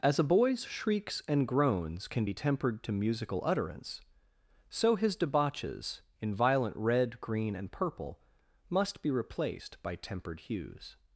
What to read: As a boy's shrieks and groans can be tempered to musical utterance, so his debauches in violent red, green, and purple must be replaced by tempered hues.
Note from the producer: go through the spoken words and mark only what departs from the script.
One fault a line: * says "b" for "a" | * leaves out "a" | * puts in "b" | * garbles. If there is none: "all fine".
all fine